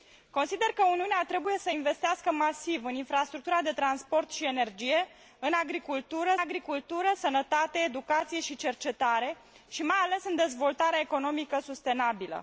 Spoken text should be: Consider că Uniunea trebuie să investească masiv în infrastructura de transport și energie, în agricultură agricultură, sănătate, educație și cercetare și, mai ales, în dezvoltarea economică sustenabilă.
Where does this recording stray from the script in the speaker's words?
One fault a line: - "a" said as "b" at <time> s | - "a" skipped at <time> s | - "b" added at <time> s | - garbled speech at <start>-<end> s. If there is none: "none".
none